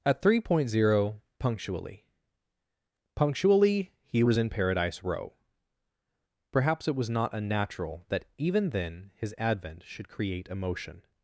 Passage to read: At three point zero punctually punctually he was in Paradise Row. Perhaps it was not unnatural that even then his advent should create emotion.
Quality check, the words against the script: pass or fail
pass